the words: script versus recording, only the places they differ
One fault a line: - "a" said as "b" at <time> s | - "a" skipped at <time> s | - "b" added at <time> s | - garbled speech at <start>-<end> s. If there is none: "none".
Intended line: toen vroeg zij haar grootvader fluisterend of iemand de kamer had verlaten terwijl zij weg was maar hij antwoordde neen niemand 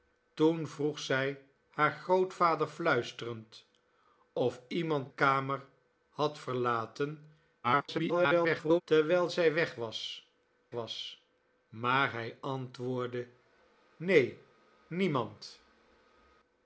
- "de" skipped at 5.1 s
- garbled speech at 7.6-8.8 s
- "was" added at 10.7 s